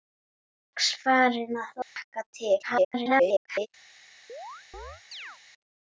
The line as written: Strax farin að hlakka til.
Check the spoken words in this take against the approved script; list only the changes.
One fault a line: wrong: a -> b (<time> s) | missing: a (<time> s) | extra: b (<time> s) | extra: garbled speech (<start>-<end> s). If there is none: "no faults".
extra: garbled speech (2.6-3.7 s)